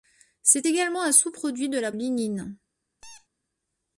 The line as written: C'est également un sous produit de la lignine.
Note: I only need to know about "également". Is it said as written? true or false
true